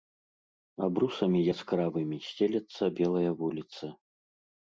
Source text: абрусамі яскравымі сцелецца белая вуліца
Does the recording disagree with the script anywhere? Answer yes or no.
no